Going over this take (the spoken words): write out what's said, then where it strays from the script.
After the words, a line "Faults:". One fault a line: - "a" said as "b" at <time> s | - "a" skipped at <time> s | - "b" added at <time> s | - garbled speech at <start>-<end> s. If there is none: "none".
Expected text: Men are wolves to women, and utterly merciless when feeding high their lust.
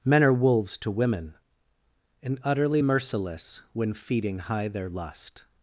Men are wolves to women, and utterly merciless when feeding high their lust.
Faults:
none